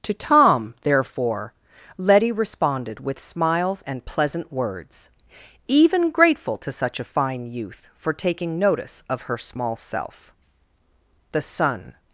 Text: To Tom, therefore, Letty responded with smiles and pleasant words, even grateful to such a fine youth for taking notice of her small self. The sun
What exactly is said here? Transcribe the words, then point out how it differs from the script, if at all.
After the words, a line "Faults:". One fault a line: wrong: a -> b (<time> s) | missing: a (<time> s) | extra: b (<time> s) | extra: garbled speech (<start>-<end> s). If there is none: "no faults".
To Tom, therefore, Letty responded with smiles and pleasant words, even grateful to such a fine youth for taking notice of her small self. The sun
Faults:
no faults